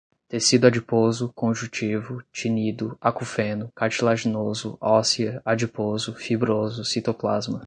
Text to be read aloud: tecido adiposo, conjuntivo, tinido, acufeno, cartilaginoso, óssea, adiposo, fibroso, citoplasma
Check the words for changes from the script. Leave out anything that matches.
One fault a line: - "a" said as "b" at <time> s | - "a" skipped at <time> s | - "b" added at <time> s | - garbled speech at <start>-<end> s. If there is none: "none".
none